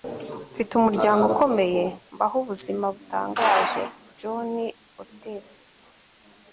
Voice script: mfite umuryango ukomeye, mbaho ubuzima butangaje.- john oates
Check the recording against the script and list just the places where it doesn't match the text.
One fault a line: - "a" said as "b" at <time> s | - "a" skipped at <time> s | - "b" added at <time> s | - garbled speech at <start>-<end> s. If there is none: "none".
none